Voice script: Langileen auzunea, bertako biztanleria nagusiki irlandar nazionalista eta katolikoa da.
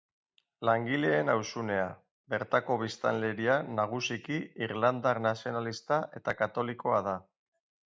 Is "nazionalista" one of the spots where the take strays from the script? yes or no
no